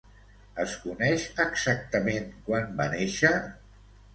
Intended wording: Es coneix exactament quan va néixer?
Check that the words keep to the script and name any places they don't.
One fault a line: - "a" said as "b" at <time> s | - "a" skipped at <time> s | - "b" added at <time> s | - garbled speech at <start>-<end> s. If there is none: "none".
none